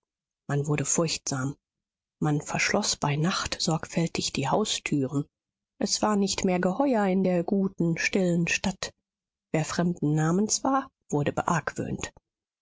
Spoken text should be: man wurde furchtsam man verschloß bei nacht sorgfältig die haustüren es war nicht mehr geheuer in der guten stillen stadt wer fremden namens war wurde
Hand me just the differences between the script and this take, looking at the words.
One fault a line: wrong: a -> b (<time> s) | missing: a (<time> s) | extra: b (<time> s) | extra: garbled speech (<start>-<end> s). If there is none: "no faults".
no faults